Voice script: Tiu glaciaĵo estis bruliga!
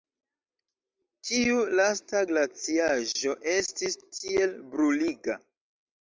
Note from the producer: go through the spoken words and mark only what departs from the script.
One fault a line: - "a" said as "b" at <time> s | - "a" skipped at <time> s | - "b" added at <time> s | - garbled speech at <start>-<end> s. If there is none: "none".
- "lasta" added at 1.8 s
- "tiel" added at 4.2 s